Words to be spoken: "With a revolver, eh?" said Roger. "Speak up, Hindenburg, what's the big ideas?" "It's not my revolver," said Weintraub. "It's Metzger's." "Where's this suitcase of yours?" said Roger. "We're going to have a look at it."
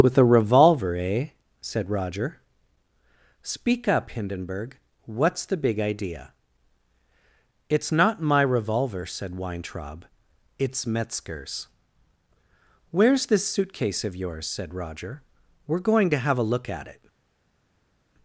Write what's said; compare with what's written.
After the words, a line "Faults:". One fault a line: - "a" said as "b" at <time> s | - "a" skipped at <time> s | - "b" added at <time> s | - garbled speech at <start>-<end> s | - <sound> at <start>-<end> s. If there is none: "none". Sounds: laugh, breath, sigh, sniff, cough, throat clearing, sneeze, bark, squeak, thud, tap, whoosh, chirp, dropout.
"With a revolver, eh?" said Roger. "Speak up, Hindenburg, what's the big idea?" "It's not my revolver," said Weintraub. "It's Metzger's." "Where's this suitcase of yours?" said Roger. "We're going to have a look at it."
Faults:
- "ideas" said as "idea" at 5.8 s